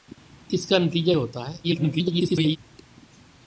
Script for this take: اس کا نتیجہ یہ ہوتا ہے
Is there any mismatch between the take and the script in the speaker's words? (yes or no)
yes